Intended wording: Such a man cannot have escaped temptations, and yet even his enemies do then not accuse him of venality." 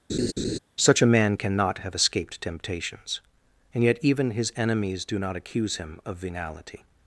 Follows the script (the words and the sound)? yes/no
no